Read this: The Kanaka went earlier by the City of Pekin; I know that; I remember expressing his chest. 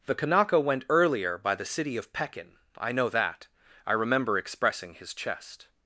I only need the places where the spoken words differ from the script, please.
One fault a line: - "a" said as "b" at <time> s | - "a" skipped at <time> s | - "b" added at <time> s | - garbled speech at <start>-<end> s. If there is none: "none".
none